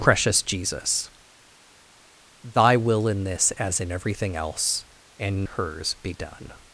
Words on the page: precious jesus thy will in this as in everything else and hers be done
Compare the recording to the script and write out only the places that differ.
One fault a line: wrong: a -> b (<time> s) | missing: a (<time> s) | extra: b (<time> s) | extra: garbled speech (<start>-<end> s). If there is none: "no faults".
no faults